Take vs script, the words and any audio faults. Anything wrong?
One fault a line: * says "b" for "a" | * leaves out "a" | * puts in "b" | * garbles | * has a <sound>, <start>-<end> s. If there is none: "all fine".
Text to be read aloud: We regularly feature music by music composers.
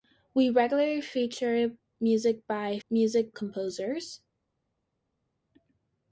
all fine